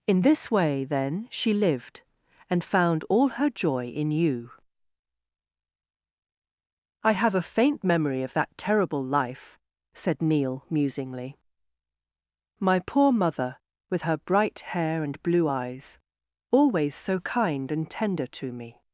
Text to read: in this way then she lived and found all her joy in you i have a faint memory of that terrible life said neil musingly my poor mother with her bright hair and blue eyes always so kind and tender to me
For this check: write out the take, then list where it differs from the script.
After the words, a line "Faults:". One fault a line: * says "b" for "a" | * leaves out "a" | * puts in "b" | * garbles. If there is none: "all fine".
in this way then she lived and found all her joy in you i have a faint memory of that terrible life said neil musingly my poor mother with her bright hair and blue eyes always so kind and tender to me
Faults:
all fine